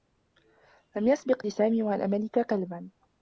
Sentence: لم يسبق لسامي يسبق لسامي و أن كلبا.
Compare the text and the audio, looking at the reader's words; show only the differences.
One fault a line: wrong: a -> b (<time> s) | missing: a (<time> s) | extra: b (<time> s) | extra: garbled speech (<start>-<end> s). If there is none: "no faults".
missing: يسبق لسامي (1.8 s)
extra: ملك (2.1 s)